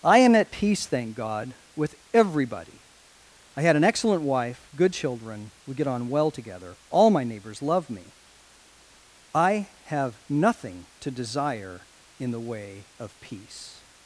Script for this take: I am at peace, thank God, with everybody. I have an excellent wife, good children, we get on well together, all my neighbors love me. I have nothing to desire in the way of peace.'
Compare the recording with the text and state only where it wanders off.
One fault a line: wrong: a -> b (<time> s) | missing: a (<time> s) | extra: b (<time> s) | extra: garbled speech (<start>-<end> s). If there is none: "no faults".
wrong: have -> had (3.6 s)